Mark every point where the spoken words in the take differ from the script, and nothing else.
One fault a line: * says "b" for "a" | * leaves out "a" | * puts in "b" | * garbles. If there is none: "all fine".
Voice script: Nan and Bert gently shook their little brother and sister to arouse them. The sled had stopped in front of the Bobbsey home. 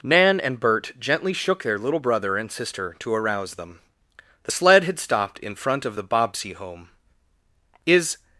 * puts in "Is"